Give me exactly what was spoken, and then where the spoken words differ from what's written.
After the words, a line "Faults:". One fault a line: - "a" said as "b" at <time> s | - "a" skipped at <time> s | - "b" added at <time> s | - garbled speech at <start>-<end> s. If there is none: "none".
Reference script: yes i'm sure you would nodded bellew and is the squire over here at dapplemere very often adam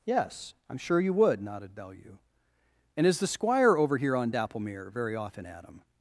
yes i'm sure you would nodded bellew and is the squire over here on dapplemere very often adam
Faults:
- "at" said as "on" at 4.1 s